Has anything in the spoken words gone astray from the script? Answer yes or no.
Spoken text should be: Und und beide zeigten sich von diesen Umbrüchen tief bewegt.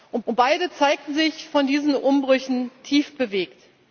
no